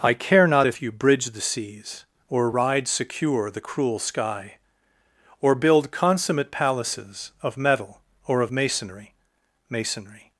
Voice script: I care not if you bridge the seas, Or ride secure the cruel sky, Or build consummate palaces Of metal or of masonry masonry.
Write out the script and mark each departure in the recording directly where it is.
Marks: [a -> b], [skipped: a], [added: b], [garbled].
I care not if you bridge the seas, Or ride secure the cruel sky, Or build consummate palaces Of metal or of masonry masonry.